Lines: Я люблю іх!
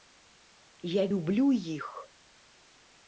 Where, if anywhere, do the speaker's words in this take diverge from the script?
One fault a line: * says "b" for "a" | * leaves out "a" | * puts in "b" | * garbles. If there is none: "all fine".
all fine